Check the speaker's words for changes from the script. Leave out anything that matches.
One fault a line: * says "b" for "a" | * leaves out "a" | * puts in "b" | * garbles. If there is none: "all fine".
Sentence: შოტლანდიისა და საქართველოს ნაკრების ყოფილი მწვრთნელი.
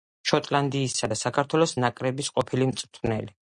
all fine